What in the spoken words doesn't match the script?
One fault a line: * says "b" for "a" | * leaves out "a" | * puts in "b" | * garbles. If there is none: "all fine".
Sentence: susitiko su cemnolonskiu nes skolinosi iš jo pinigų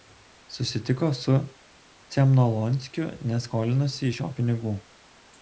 all fine